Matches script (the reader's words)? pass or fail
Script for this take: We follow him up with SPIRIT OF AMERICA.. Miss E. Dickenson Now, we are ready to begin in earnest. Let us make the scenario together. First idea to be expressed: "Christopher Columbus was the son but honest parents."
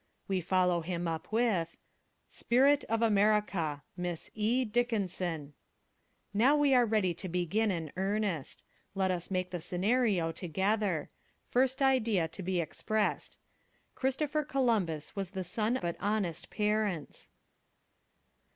pass